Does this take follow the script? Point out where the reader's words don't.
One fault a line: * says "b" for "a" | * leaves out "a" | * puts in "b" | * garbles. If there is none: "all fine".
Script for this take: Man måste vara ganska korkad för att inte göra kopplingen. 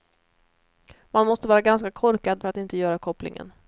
all fine